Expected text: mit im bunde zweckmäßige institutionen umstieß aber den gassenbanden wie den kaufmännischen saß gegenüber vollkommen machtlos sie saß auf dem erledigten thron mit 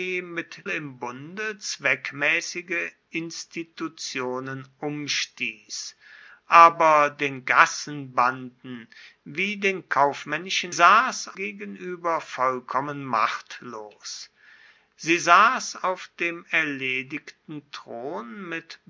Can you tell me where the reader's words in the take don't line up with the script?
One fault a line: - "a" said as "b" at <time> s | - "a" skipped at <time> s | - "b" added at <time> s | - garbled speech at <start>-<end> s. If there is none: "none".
none